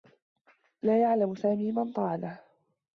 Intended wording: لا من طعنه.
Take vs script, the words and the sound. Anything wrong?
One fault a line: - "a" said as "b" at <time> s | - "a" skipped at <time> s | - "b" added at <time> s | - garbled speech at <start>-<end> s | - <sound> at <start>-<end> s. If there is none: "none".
- "يعلم سامي" added at 1.0 s